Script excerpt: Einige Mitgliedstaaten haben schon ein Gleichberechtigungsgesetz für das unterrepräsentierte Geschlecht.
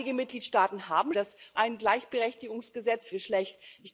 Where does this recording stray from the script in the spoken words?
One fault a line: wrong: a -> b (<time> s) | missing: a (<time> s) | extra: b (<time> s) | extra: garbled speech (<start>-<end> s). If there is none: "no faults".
wrong: schon -> das (1.1 s)
missing: für das unterrepräsentierte (3.1 s)